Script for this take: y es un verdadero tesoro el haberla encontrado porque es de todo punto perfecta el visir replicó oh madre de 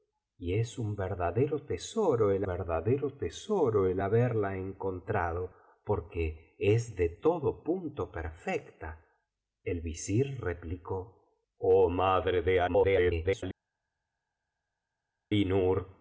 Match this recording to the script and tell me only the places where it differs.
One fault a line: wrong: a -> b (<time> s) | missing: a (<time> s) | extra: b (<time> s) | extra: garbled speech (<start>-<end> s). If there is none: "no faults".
extra: verdadero tesoro el (2.4 s)
extra: garbled speech (12.7-13.4 s)